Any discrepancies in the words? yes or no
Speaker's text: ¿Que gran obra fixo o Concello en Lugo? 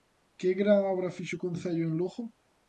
no